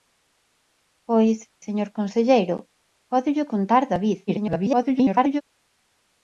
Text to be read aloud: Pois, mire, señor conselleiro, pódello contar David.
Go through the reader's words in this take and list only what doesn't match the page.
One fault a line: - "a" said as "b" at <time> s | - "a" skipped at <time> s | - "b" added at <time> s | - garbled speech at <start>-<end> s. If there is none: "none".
- "mire" skipped at 1.4 s
- garbled speech at 4.3-5.4 s